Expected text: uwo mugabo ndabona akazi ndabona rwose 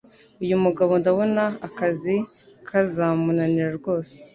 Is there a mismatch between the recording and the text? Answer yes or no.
yes